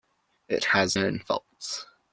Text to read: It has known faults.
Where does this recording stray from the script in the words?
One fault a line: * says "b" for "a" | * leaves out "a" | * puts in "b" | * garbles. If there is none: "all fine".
all fine